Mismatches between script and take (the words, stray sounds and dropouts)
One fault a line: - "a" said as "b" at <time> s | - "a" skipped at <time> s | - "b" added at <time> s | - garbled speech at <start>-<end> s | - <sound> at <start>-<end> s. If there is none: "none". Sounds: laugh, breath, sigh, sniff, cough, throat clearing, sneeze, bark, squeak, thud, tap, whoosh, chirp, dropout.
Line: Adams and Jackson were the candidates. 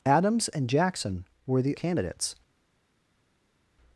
none